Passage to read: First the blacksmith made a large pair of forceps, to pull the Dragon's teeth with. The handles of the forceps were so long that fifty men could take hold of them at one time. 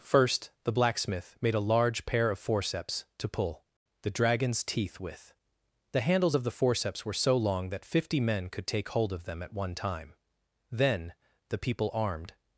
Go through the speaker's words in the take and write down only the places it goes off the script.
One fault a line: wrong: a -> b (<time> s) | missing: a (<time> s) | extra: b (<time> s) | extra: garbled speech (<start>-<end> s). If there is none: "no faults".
extra: Then the people armed (10.7 s)